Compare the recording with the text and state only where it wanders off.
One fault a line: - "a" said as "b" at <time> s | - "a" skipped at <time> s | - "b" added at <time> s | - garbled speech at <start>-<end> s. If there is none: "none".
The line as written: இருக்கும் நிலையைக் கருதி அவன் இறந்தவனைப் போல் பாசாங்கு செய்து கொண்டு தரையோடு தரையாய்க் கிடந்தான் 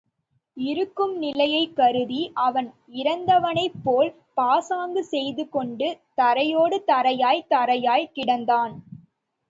- "தரையாய்க்" added at 7.5 s